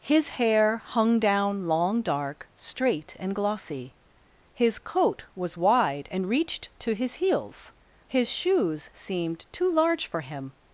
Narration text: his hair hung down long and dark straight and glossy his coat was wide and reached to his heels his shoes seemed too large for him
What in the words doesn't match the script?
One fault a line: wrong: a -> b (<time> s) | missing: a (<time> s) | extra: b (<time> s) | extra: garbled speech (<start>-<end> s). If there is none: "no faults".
missing: and (2.0 s)